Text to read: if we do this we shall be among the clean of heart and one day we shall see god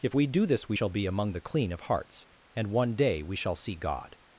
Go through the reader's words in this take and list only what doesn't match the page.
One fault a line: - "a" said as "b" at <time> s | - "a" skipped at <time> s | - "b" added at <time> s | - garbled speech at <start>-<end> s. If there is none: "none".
- "heart" said as "hearts" at 1.8 s